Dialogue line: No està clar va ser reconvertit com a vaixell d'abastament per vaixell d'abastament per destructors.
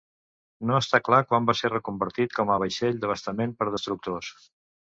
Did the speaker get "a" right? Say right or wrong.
right